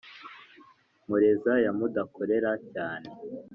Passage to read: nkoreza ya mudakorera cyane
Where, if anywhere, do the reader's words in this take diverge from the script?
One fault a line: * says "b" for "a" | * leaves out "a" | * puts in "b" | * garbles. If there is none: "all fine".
all fine